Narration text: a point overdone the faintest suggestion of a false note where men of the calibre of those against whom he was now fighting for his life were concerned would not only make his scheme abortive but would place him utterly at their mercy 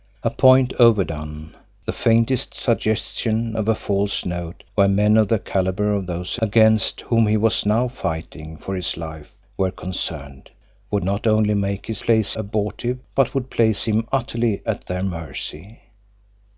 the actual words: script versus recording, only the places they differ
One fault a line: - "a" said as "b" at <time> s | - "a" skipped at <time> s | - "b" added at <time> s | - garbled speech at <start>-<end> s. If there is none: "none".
- "scheme" said as "place" at 12.0 s